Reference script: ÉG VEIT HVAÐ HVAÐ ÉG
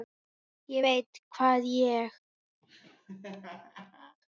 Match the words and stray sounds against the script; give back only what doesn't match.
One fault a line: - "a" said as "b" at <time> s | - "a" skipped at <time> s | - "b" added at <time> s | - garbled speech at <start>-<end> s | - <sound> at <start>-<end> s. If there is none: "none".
- "HVAÐ" skipped at 1.6 s
- laugh at 2.6-4.2 s